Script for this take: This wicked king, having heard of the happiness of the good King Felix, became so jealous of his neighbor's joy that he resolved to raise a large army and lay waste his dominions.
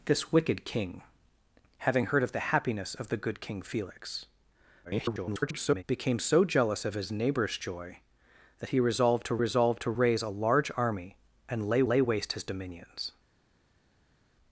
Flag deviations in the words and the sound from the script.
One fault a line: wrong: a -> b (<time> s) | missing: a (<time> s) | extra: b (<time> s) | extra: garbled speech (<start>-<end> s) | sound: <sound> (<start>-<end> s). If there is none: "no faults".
extra: garbled speech (4.8-5.8 s)
extra: resolved to (9.4 s)
extra: lay (11.9 s)